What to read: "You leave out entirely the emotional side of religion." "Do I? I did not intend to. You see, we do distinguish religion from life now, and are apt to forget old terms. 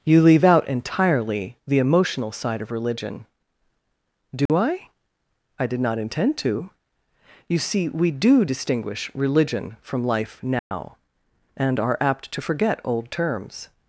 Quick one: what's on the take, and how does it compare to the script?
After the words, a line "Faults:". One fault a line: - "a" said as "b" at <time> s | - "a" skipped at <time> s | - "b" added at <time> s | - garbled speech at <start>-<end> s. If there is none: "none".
"You leave out entirely the emotional side of religion." "Do I? I did not intend to. You see, we do distinguish religion from life now, and are apt to forget old terms.
Faults:
none